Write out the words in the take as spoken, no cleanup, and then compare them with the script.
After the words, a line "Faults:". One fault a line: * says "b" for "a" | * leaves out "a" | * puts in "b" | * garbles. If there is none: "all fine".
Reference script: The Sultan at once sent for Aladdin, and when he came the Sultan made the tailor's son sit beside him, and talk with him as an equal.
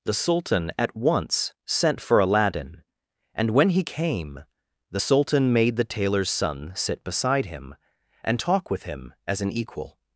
The Sultan at once sent for Aladdin, and when he came the Sultan made the tailor's son sit beside him, and talk with him as an equal.
Faults:
all fine